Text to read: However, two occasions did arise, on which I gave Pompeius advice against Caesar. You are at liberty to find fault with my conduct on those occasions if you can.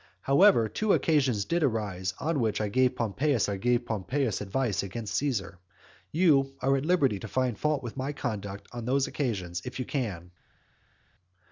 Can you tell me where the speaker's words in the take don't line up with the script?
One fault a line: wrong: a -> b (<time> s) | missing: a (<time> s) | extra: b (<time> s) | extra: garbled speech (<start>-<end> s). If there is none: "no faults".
extra: I gave Pompeius (3.5 s)